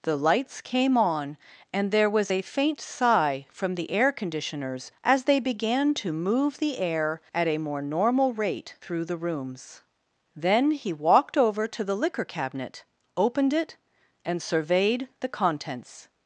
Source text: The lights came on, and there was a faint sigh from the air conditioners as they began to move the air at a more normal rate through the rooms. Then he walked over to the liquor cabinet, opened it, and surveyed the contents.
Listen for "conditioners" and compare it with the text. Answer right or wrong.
right